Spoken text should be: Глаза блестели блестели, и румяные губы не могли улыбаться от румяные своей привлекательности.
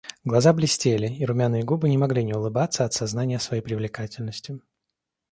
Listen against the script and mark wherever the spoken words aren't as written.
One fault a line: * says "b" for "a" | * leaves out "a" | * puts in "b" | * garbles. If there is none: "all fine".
* leaves out "блестели"
* puts in "не"
* says "сознания" for "румяные"